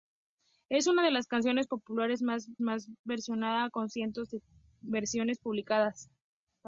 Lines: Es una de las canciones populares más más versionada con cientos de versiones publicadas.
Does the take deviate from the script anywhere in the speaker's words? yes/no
no